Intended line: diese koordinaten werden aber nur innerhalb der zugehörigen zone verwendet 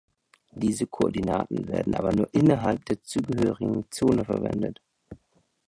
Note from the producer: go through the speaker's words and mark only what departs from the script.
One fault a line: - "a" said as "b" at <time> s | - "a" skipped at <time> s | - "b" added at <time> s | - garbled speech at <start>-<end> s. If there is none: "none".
none